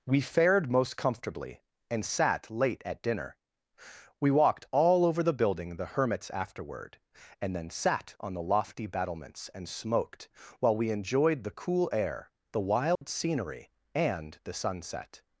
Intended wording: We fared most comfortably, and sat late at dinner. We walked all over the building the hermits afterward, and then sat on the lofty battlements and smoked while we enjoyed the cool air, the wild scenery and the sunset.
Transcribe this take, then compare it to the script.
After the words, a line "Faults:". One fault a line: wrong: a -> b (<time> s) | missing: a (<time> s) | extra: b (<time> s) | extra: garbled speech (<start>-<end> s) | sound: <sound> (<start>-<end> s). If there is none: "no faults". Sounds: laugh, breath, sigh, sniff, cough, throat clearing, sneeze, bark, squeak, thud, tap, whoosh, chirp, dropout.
We fared most comfortably, and sat late at dinner. We walked all over the building the hermits afterward, and then sat on the lofty battlements and smoked while we enjoyed the cool air, the wild scenery and the sunset.
Faults:
sound: dropout (13.0-13.0 s)